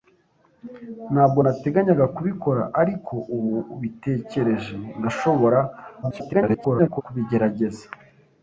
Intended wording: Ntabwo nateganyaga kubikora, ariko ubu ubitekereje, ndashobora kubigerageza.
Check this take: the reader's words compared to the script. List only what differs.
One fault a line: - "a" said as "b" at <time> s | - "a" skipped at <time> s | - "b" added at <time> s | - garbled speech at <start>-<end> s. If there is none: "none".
- garbled speech at 6.0-7.0 s